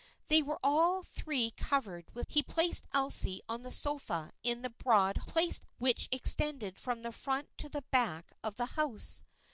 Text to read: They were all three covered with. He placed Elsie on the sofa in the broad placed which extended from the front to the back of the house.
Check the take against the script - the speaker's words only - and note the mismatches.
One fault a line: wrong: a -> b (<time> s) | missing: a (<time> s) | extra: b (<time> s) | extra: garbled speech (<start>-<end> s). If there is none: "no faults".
no faults